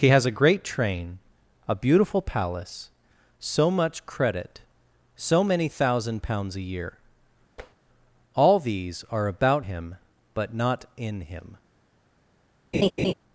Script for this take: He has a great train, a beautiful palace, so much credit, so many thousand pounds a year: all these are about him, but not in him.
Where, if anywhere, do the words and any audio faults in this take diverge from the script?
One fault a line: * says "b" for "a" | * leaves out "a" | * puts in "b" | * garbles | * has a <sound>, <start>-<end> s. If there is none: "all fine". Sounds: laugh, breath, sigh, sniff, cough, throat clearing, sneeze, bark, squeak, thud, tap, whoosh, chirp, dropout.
* has a tap, 7.6-7.8 s
* has a laugh, 12.7-13.1 s